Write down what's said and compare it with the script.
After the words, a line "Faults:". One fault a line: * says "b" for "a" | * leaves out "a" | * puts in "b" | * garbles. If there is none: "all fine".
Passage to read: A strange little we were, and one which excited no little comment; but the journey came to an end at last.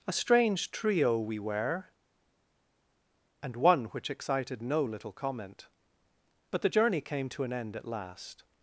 A strange trio we were, and one which excited no little comment; but the journey came to an end at last.
Faults:
* says "trio" for "little"